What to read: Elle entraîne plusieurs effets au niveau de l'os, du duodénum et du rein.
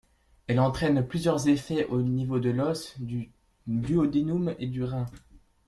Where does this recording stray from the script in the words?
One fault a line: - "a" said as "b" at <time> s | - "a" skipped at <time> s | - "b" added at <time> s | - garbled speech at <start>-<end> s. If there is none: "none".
none